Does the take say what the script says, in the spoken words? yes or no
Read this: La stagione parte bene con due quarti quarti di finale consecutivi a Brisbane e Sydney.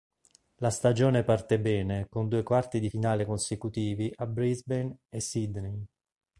no